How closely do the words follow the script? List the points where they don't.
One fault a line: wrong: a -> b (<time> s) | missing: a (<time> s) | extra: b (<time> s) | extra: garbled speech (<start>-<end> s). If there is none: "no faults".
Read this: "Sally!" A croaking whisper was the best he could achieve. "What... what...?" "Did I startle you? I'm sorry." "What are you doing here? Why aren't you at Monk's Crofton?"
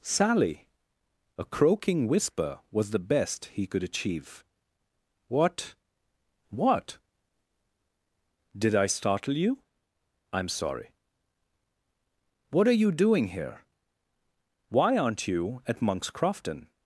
no faults